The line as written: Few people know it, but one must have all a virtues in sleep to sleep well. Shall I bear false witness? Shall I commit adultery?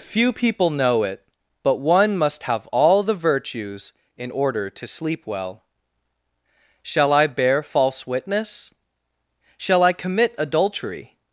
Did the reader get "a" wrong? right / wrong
wrong